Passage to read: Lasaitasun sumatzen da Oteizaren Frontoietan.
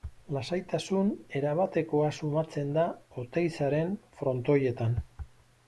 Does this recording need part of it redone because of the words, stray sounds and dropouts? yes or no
yes